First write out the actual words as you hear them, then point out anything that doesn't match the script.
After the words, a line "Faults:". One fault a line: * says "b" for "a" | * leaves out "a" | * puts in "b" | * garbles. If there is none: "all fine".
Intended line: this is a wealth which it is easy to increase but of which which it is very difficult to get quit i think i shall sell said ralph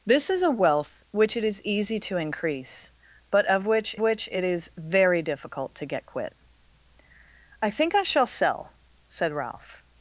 this is a wealth which it is easy to increase but of which which it is very difficult to get quit i think i shall sell said ralph
Faults:
all fine